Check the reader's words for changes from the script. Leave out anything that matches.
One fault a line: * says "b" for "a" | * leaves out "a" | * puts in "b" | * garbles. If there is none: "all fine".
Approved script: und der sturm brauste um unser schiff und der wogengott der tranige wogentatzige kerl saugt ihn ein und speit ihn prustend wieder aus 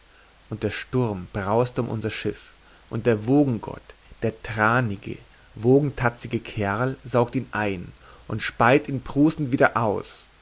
all fine